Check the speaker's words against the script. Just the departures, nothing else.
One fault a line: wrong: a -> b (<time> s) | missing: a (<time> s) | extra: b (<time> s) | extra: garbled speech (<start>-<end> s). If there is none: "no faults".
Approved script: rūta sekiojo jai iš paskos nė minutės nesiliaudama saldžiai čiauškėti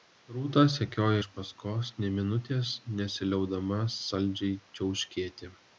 missing: jai (1.2 s)